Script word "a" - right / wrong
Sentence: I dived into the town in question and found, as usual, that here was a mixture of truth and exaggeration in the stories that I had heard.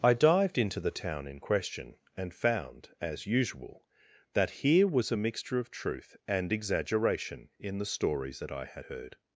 right